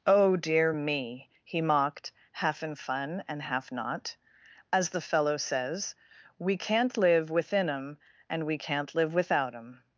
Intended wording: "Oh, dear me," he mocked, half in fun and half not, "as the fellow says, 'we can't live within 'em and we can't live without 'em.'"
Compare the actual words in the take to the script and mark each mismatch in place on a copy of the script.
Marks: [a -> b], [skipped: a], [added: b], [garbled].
"Oh, dear me," he mocked, half in fun and half not, "as the fellow says, 'we can't live within 'em and we can't live without 'em.'"